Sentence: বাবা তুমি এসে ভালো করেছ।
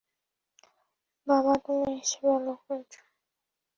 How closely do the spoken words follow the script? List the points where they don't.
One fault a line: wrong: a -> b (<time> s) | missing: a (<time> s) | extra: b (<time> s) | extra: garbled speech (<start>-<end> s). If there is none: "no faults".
no faults